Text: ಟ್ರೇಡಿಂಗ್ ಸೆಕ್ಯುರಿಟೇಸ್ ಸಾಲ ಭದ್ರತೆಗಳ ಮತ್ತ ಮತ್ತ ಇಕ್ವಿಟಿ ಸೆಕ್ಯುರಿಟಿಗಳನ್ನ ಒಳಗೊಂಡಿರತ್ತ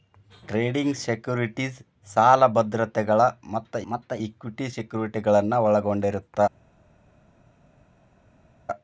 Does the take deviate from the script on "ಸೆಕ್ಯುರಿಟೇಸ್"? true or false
false